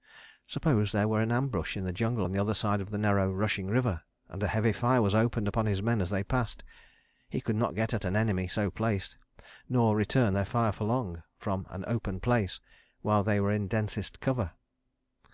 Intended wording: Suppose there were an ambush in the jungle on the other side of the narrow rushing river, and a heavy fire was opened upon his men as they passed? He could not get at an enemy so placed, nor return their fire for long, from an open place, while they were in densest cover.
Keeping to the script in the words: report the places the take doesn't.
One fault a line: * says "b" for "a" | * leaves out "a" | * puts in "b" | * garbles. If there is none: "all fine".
all fine